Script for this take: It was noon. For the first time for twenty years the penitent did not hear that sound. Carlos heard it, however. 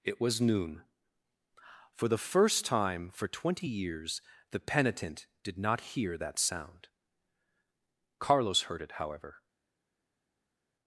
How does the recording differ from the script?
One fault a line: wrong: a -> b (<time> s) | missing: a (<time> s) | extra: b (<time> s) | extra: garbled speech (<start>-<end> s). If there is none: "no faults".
no faults